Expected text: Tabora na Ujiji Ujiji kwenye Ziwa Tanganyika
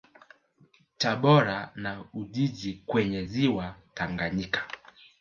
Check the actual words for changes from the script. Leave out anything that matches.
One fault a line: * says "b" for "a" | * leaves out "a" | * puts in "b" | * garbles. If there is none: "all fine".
* leaves out "Ujiji"